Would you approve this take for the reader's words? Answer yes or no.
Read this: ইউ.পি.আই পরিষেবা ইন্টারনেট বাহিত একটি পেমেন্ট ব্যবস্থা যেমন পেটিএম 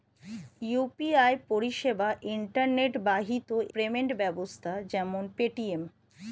no